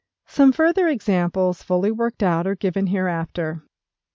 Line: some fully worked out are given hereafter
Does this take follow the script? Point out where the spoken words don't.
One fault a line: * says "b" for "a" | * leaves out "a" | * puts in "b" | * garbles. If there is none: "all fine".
* puts in "further examples"